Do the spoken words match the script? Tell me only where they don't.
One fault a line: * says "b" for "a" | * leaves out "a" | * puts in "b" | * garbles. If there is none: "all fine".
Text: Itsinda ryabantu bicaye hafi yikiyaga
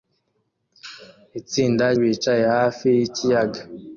* leaves out "ryabantu"